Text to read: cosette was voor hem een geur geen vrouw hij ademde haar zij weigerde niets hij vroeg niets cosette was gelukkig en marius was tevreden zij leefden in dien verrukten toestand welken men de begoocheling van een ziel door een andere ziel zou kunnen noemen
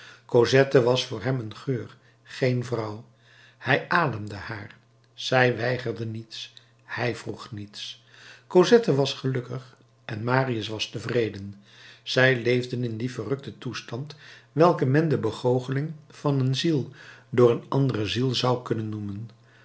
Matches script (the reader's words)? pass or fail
pass